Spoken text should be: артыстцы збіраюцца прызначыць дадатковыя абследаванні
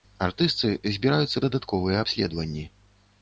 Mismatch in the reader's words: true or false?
true